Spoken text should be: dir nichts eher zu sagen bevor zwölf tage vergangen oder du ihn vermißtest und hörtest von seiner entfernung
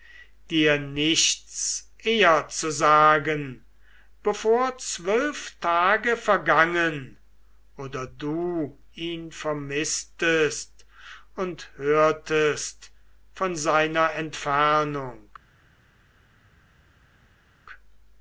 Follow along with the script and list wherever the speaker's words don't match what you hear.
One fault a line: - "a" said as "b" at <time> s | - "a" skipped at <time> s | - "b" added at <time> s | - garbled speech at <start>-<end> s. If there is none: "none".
none